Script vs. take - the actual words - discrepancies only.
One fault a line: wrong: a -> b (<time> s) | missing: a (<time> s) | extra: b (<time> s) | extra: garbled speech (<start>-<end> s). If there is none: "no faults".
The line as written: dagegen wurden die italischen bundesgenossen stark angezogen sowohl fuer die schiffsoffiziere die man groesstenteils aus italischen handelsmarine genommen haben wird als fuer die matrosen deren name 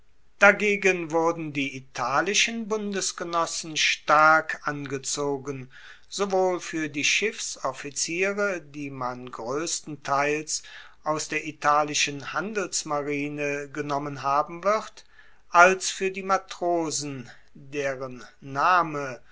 extra: der (11.3 s)